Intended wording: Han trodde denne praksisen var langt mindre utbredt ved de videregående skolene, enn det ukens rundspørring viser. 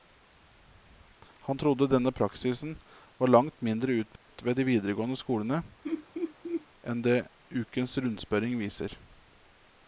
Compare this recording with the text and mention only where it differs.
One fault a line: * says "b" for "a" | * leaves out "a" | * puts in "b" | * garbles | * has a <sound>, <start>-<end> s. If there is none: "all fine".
* has a dropout, 4.2-4.3 s
* has a laugh, 5.8-6.7 s